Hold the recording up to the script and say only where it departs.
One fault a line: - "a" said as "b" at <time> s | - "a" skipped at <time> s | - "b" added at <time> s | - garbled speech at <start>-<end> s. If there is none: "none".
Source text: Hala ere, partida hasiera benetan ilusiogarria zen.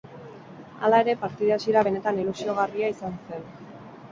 - "izan" added at 3.0 s